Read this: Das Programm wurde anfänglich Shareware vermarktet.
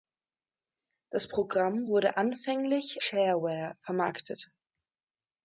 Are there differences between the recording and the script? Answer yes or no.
no